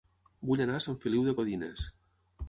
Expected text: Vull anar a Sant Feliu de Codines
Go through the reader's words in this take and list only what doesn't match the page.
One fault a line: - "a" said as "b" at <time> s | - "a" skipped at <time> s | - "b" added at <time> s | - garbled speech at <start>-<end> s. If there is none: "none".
none